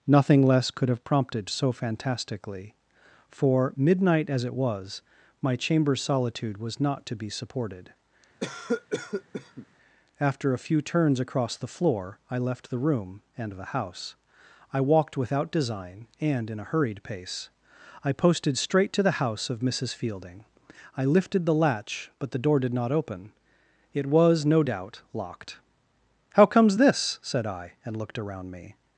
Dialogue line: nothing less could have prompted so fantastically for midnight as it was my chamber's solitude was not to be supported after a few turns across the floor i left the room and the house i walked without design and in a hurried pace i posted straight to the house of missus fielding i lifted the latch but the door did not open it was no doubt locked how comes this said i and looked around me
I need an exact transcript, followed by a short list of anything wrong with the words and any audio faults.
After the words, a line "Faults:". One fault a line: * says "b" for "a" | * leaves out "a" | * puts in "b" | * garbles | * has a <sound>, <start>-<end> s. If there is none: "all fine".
nothing less could have prompted so fantastically for midnight as it was my chamber's solitude was not to be supported after a few turns across the floor i left the room and the house i walked without design and in a hurried pace i posted straight to the house of missus fielding i lifted the latch but the door did not open it was no doubt locked how comes this said i and looked around me
Faults:
* has a cough, 8.4-9.7 s